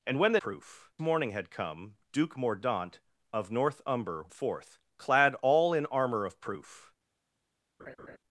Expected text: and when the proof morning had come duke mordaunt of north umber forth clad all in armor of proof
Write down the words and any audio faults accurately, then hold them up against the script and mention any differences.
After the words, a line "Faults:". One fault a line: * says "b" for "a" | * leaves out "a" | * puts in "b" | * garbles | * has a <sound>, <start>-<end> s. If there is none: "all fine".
and when the proof morning had come duke mordaunt of north umber forth clad all in armor of proof
Faults:
* has a laugh, 7.8-8.2 s